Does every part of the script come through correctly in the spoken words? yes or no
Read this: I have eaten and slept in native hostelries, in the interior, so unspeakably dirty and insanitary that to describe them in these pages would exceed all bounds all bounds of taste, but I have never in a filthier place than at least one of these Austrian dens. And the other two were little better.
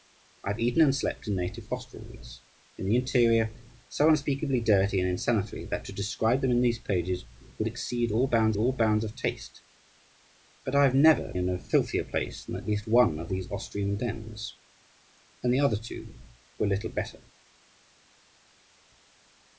yes